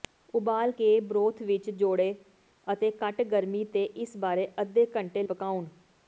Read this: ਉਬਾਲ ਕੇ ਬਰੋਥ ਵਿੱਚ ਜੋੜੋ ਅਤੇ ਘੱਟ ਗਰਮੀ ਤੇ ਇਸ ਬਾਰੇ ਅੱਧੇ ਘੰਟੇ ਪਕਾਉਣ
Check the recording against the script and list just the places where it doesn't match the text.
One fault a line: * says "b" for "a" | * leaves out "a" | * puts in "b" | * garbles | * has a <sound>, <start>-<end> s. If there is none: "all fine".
all fine